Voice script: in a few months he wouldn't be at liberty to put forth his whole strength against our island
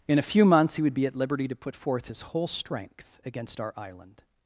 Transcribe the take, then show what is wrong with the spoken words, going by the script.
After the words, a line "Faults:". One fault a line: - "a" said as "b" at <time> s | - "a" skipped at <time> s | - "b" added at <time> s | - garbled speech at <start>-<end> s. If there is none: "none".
in a few months he would be at liberty to put forth his whole strength against our island
Faults:
- "wouldn't" said as "would" at 0.8 s